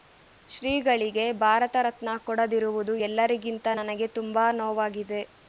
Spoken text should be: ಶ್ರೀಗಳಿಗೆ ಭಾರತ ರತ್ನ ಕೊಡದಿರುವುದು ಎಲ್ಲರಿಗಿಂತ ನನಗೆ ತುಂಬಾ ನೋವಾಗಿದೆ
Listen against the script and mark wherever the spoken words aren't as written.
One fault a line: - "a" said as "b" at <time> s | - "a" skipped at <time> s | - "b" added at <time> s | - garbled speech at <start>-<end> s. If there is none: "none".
none